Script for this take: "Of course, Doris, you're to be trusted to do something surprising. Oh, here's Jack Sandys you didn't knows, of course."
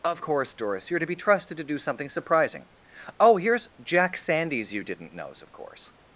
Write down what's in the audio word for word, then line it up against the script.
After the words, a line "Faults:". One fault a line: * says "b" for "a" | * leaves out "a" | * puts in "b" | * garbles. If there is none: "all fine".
"Of course, Doris, you're to be trusted to do something surprising. Oh, here's Jack Sandys you didn't knows, of course."
Faults:
all fine